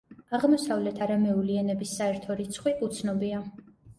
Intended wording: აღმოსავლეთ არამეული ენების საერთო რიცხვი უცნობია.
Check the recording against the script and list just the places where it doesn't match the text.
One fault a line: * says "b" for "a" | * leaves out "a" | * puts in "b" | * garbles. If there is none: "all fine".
all fine